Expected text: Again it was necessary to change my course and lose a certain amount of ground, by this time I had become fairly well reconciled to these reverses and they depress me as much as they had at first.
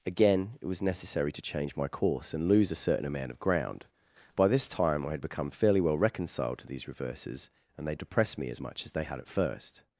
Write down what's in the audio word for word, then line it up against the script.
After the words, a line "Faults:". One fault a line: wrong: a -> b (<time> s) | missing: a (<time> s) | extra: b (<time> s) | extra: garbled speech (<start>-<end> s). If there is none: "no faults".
Again it was necessary to change my course and lose a certain amount of ground, by this time I had become fairly well reconciled to these reverses and they depress me as much as they had at first.
Faults:
no faults